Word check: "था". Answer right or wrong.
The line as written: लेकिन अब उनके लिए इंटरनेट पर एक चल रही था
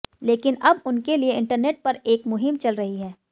wrong